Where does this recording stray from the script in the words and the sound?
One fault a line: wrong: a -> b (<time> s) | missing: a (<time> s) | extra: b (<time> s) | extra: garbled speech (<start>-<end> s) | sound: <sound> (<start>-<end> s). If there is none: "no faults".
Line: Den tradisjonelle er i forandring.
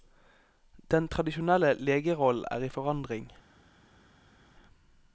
extra: legerollen (1.7 s)